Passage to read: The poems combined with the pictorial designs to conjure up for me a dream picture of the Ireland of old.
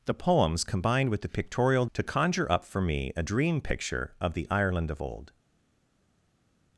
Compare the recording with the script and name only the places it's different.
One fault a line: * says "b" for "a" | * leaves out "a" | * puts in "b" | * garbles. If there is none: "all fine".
* leaves out "designs"